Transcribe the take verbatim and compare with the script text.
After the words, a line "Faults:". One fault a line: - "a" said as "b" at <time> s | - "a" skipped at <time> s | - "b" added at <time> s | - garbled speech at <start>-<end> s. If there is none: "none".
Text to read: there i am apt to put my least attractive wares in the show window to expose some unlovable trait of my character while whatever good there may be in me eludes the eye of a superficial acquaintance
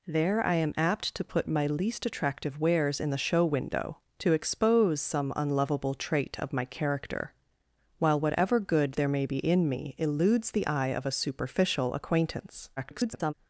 there i am apt to put my least attractive wares in the show window to expose some unlovable trait of my character while whatever good there may be in me eludes the eye of a superficial acquaintance [garbled]
Faults:
- garbled speech at 12.8-13.3 s